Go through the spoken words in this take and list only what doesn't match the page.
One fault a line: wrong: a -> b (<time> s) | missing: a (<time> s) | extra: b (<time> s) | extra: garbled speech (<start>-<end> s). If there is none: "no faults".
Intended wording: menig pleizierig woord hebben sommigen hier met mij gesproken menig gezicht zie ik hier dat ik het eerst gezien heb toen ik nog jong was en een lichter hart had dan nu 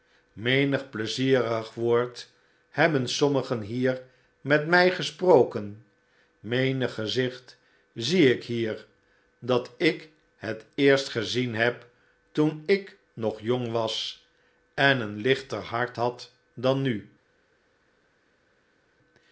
no faults